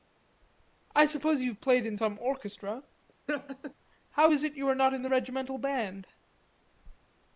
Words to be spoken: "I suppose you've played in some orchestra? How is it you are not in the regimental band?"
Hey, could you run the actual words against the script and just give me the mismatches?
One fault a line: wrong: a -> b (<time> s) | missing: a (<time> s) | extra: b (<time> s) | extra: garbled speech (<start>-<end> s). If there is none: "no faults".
no faults